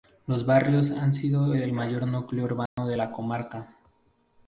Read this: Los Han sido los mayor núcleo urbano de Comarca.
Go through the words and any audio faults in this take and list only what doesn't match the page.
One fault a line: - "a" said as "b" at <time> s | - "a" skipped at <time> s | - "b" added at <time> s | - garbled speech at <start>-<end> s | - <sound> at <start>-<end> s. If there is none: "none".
- "Barrios" added at 0.5 s
- "los" said as "el" at 1.5 s
- dropout at 2.7-2.8 s
- "la" added at 2.9 s